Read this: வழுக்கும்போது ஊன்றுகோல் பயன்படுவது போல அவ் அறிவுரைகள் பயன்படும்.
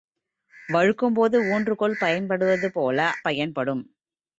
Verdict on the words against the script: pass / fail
fail